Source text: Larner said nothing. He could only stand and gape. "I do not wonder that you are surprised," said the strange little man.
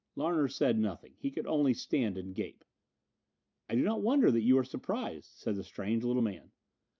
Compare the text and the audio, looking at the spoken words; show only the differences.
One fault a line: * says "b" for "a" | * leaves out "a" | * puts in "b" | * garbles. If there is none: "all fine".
all fine